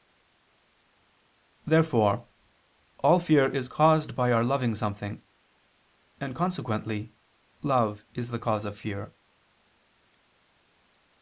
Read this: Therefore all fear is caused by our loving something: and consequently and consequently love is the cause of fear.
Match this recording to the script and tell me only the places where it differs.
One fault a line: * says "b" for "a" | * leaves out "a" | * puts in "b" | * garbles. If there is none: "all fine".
* leaves out "and consequently"